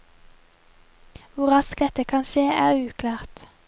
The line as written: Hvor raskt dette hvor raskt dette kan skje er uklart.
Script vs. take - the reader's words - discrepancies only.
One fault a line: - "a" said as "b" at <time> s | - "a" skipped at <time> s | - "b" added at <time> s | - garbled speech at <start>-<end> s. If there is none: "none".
- "hvor raskt dette" skipped at 2.0 s